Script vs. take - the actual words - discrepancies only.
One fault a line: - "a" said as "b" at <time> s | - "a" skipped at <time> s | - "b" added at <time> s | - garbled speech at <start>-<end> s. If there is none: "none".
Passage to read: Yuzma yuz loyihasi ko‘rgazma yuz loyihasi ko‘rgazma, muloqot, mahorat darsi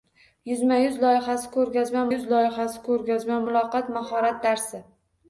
none